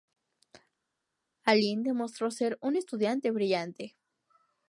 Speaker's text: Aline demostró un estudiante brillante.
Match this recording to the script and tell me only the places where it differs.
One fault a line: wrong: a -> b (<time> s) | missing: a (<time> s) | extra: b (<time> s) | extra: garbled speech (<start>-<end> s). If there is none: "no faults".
extra: ser (2.3 s)